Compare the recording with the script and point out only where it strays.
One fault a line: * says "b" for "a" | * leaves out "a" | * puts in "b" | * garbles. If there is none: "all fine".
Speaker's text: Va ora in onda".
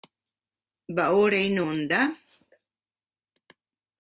all fine